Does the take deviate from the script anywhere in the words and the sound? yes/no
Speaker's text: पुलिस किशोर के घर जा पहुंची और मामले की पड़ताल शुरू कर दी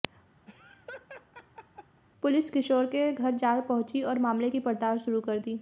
yes